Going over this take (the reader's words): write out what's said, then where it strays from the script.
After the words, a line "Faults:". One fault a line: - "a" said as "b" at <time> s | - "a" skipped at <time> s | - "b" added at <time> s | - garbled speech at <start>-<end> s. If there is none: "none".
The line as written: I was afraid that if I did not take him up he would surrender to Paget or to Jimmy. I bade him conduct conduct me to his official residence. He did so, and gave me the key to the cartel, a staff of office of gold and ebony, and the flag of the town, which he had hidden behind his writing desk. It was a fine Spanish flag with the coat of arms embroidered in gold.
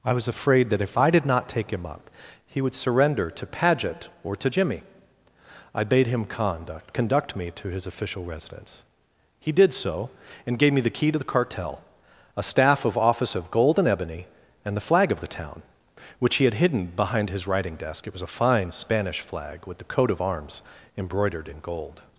I was afraid that if I did not take him up he would surrender to Paget or to Jimmy. I bade him conduct conduct me to his official residence. He did so, and gave me the key to the cartel, a staff of office of gold and ebony, and the flag of the town, which he had hidden behind his writing desk. It was a fine Spanish flag with the coat of arms embroidered in gold.
Faults:
none